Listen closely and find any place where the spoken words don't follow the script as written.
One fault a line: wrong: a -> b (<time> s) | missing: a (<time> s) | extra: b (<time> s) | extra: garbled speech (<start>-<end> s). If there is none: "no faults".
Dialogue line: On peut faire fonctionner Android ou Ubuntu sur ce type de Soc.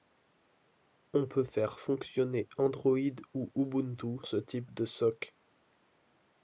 missing: sur (4.2 s)